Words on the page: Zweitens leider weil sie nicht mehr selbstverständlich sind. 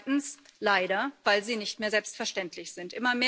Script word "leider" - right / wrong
right